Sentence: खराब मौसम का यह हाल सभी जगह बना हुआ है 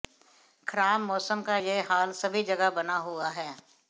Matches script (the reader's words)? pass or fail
pass